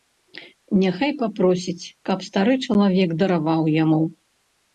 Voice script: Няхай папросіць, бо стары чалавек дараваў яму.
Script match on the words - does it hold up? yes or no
no